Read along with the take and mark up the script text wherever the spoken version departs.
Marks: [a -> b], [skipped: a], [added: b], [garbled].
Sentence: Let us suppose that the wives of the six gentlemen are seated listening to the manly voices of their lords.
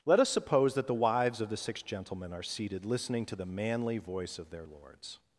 Let us suppose that the wives of the six gentlemen are seated listening to the manly [voices -> voice] of their lords.